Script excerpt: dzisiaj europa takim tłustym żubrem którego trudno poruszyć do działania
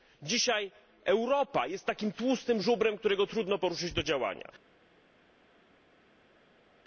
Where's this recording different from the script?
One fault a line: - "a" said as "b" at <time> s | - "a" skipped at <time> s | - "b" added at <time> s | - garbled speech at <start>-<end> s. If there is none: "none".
- "jest" added at 1.7 s